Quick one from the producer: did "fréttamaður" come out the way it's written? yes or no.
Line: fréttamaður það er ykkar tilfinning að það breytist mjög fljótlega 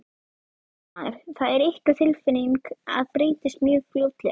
yes